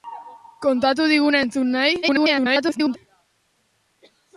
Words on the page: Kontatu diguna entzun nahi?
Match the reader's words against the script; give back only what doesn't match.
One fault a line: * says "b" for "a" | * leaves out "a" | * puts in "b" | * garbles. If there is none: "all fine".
* garbles